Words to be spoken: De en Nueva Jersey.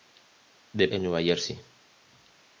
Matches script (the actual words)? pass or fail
pass